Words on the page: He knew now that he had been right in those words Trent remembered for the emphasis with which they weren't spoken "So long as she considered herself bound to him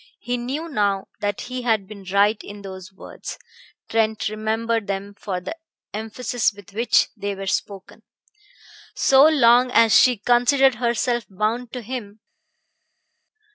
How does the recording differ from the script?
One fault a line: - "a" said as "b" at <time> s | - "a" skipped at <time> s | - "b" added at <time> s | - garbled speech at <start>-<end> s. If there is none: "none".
- "them" added at 4.9 s
- "weren't" said as "were" at 7.3 s